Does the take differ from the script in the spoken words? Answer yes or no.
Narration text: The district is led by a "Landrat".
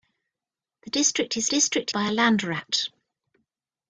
yes